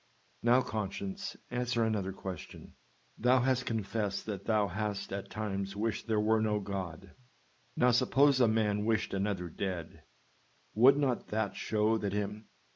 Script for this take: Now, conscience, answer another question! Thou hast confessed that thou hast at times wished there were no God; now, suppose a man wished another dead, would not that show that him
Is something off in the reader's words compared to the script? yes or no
no